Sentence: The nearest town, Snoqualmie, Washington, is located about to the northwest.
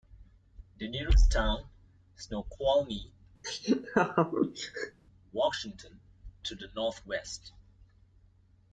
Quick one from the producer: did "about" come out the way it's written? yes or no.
no